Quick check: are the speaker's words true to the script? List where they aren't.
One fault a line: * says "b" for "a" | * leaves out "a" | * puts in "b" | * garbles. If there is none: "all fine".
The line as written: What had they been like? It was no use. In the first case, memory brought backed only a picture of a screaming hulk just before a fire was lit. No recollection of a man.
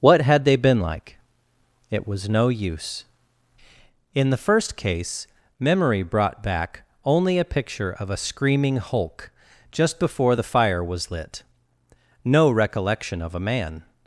* says "back" for "backed"
* says "the" for "a"